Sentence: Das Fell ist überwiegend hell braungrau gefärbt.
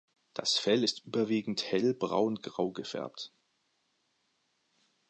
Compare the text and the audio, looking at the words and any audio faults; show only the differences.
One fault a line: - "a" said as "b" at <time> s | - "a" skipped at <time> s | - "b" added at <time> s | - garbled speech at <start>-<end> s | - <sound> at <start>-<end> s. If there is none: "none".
none